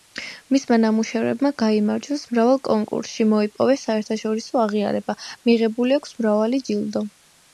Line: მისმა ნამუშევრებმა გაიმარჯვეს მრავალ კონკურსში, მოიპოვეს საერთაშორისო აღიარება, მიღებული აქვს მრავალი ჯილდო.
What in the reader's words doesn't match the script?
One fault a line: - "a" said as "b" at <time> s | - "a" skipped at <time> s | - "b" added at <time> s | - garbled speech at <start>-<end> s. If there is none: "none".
none